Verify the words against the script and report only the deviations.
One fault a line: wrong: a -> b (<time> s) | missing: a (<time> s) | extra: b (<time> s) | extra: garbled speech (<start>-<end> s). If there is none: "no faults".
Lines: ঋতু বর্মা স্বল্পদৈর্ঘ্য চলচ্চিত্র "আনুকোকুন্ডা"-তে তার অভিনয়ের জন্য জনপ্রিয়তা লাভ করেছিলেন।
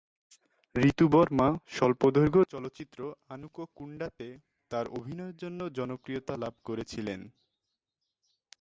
no faults